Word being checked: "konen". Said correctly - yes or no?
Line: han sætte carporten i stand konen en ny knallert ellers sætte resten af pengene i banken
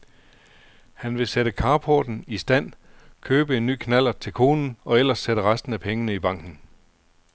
no